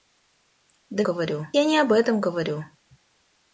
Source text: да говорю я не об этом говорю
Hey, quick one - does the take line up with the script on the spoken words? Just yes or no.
yes